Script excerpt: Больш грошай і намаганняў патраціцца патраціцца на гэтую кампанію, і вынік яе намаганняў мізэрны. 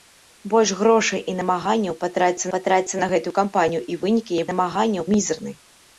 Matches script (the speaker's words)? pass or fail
pass